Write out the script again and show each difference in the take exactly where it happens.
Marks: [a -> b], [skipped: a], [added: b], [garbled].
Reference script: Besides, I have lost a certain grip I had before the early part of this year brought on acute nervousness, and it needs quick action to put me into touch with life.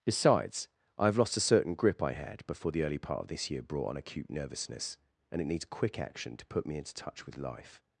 Besides, I have lost a certain grip I had before the early part of this year brought on acute nervousness, and it needs quick action to put me into touch with life.